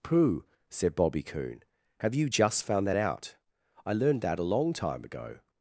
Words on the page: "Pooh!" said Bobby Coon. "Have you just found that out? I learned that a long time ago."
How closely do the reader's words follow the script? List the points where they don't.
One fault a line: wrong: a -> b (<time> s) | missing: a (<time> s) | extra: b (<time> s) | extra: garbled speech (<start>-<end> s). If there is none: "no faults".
no faults